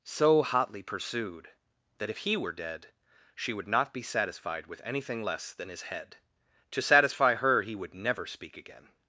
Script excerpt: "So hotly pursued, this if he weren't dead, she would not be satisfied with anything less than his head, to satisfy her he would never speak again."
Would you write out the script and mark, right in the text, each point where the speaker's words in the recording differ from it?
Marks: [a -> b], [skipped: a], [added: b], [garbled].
"So hotly pursued, [this -> that] if he [weren't -> were] dead, she would not be satisfied with anything less than his head, to satisfy her he would never speak again."